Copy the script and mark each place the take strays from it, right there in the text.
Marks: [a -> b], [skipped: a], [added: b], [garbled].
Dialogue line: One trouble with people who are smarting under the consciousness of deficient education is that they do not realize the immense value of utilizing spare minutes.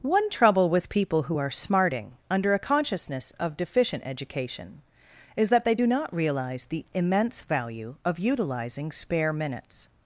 One trouble with people who are smarting under [the -> a] consciousness of deficient education is that they do not realize the immense value of utilizing spare minutes.